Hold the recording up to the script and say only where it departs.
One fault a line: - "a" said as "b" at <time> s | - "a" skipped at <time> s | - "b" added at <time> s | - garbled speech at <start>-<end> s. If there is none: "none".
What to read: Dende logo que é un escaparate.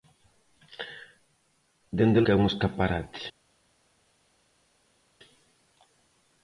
- "logo" skipped at 2.2 s